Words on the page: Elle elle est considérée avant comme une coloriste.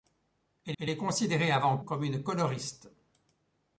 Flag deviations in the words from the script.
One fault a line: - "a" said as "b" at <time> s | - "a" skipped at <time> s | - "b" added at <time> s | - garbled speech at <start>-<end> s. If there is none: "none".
none